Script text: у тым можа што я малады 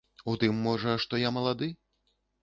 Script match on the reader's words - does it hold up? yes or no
yes